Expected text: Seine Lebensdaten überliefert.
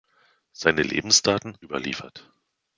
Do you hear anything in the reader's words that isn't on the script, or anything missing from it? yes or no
no